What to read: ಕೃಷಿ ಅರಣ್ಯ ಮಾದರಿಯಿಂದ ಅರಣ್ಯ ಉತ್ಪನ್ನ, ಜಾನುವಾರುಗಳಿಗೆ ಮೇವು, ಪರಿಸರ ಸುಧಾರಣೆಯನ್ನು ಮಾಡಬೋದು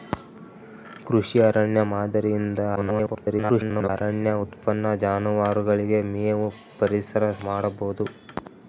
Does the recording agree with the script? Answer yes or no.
no